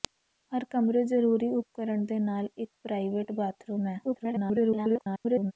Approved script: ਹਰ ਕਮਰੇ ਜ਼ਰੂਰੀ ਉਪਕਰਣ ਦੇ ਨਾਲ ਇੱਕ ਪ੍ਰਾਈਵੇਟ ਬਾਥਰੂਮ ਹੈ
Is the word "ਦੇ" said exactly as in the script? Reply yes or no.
yes